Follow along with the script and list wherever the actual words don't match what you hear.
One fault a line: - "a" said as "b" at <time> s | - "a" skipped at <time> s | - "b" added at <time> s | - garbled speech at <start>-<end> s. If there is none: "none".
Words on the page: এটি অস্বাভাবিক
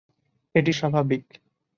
none